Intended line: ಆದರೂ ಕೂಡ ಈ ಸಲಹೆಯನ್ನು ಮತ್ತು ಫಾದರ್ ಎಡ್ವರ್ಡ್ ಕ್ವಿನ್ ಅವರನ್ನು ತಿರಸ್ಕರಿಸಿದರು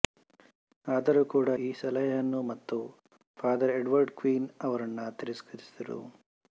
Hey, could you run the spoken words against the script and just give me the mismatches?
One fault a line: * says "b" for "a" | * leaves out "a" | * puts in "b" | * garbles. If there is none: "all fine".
all fine